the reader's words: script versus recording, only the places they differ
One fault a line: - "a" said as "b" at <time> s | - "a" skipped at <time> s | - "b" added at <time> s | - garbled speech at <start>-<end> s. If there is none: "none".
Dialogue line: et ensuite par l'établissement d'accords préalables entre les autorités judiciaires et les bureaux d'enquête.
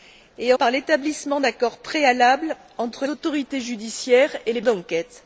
- "ensuite" skipped at 0.5 s
- "les" skipped at 3.1 s
- "bureaux" skipped at 4.6 s